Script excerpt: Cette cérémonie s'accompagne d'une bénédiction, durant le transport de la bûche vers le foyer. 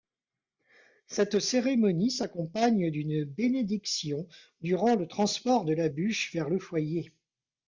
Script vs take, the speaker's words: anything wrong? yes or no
no